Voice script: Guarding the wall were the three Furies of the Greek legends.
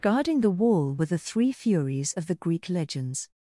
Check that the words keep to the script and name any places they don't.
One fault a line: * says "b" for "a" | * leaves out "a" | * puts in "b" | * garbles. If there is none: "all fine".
all fine